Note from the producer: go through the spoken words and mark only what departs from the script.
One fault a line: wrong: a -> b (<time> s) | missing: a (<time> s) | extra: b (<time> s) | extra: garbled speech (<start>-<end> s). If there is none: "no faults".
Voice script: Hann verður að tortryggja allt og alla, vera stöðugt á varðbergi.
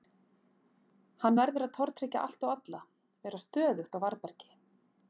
no faults